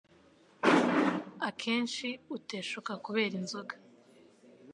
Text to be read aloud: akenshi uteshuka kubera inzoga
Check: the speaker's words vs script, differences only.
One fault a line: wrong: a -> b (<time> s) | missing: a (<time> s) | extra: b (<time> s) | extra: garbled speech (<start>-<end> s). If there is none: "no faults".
no faults